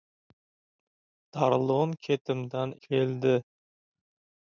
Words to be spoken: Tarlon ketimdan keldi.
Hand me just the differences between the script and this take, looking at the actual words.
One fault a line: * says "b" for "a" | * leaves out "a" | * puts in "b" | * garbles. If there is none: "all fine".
all fine